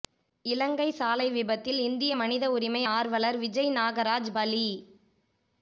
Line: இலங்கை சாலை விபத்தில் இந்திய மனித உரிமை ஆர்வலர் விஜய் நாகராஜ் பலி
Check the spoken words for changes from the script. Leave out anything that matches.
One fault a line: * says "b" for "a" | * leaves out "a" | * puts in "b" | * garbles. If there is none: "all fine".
all fine